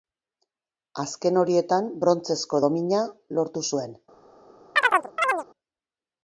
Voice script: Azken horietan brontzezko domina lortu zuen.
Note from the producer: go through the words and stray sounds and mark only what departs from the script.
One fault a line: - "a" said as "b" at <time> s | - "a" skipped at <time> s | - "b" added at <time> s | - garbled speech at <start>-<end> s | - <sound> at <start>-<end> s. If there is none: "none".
- chirp at 4.8-5.4 s